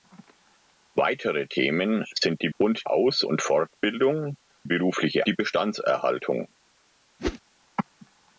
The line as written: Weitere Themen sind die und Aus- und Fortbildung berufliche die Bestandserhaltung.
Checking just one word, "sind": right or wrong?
right